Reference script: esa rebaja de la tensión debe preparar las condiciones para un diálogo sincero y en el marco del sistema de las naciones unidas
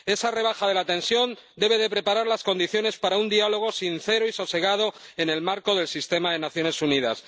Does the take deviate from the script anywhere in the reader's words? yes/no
yes